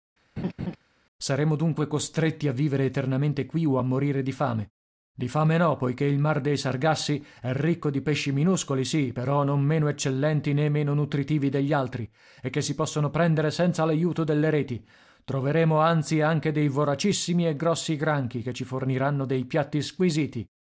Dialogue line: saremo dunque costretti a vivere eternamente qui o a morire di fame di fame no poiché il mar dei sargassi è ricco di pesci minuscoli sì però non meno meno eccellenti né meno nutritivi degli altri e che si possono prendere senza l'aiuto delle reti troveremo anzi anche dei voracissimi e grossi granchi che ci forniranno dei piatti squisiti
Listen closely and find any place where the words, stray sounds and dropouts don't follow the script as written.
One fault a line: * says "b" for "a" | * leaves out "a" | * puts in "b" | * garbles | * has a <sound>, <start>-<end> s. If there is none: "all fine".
* has a laugh, 0.4-0.8 s
* leaves out "meno"